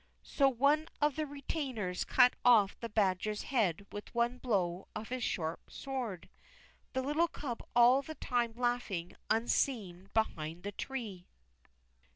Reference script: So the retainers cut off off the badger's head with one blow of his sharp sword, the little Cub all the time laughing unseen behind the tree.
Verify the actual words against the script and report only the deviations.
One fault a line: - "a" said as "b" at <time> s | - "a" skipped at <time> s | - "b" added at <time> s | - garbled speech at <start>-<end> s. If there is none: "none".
- "one of" added at 0.5 s
- "off" skipped at 2.8 s